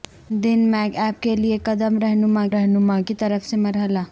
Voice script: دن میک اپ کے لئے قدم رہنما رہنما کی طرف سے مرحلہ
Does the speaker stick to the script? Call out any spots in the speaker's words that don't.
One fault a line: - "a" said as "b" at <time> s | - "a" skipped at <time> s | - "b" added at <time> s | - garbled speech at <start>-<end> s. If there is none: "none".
none